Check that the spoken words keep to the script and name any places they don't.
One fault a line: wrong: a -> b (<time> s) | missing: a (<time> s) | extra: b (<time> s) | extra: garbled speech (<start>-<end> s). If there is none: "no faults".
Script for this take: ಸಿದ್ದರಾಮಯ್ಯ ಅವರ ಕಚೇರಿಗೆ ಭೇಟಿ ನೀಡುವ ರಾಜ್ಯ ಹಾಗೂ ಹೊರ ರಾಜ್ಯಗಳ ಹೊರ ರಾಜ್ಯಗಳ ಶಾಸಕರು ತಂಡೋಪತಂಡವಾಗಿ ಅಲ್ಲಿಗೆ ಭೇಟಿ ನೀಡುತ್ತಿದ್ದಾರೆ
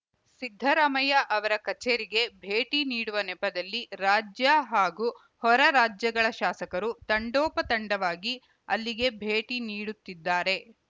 extra: ನೆಪದಲ್ಲಿ (3.3 s)
missing: ಹೊರ ರಾಜ್ಯಗಳ (6.3 s)